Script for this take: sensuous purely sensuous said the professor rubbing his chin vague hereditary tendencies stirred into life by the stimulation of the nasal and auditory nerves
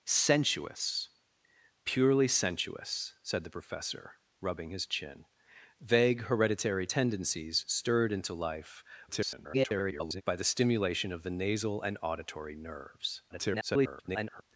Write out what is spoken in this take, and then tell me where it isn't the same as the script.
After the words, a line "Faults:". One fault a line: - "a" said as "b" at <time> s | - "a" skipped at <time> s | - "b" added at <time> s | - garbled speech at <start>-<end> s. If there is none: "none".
sensuous purely sensuous said the professor rubbing his chin vague hereditary tendencies stirred into life [garbled] by the stimulation of the nasal and auditory nerves [garbled]
Faults:
- garbled speech at 9.1-10.2 s
- garbled speech at 13.3-14.4 s